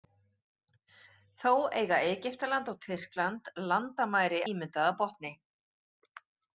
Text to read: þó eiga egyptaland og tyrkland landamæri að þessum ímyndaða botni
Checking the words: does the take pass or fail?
fail